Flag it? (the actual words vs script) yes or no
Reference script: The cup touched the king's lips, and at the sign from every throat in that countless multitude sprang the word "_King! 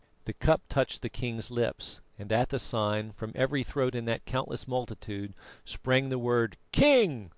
no